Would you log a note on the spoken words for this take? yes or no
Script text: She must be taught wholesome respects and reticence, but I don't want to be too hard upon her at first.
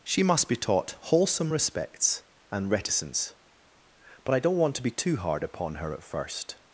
no